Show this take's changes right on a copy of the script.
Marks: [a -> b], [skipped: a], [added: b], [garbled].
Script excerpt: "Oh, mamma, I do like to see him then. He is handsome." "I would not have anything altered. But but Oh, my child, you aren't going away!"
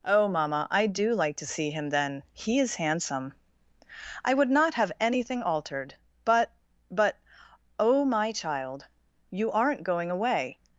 "Oh, mamma, I do like to see him then. He is handsome." "I would not have anything altered. But but Oh, my child, you aren't going away!"